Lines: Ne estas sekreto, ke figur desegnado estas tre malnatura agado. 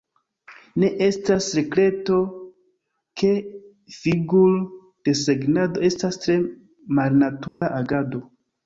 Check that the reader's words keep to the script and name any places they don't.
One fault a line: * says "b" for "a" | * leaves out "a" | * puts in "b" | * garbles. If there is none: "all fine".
all fine